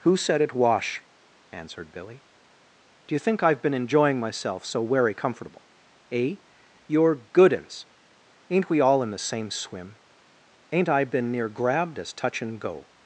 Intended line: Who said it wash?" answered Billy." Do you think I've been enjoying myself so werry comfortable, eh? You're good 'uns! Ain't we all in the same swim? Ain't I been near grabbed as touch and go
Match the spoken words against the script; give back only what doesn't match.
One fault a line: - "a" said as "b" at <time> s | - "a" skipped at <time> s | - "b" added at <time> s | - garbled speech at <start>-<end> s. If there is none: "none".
none